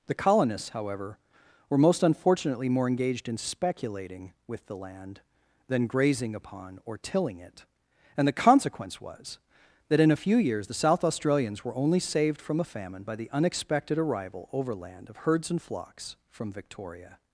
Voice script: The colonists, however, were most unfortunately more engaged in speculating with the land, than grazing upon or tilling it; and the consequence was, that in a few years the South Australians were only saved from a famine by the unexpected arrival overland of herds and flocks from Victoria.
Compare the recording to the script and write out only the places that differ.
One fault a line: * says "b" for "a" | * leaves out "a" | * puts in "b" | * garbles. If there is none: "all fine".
all fine